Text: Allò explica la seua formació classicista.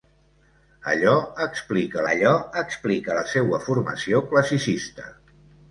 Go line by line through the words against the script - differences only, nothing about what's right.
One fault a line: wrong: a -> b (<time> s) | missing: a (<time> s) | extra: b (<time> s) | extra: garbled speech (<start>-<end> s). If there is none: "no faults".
extra: allò explica (2.1 s)